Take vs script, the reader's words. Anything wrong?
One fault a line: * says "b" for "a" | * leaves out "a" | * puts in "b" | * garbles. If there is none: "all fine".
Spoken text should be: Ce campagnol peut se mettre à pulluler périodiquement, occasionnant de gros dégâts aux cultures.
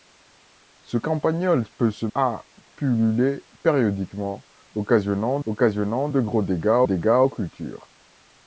* leaves out "mettre"
* puts in "occasionnant"
* puts in "dégâts"